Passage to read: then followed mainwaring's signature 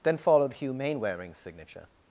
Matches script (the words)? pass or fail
fail